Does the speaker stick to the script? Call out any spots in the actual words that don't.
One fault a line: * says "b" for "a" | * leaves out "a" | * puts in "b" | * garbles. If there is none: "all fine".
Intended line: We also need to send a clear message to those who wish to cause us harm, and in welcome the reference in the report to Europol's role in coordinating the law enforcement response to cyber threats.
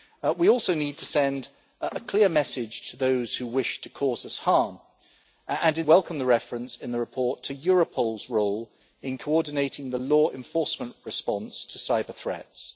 all fine